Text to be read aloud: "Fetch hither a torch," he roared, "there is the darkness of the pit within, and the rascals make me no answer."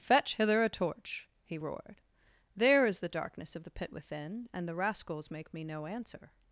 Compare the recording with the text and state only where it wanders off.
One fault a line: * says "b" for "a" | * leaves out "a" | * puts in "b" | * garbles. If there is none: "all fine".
all fine